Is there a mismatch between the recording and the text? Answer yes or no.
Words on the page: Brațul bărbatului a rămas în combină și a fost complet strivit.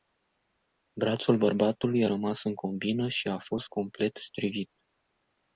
no